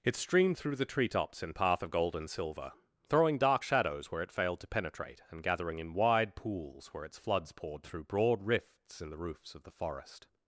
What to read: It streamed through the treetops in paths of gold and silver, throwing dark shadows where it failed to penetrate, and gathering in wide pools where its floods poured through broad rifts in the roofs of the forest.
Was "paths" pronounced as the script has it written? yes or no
no